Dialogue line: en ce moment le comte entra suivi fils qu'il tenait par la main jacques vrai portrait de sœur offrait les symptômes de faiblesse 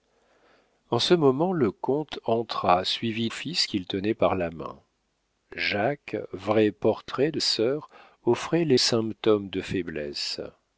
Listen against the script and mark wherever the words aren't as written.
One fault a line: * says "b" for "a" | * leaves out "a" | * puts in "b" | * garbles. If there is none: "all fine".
all fine